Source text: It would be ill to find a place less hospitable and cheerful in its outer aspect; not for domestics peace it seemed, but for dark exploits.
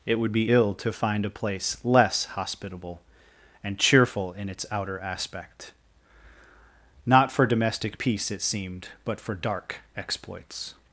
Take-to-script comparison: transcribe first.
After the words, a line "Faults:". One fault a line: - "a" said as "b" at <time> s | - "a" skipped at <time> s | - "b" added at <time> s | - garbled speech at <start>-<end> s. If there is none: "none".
It would be ill to find a place less hospitable and cheerful in its outer aspect; not for domestic peace it seemed, but for dark exploits.
Faults:
- "domestics" said as "domestic" at 7.5 s